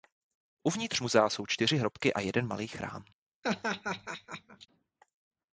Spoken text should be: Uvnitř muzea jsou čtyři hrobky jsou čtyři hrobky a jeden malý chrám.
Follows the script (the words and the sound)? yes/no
no